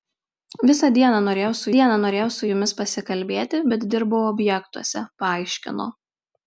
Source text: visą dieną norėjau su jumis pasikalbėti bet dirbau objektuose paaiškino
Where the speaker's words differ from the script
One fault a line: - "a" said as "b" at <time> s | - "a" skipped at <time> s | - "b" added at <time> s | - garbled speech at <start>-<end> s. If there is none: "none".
- "dieną norėjau su" added at 1.7 s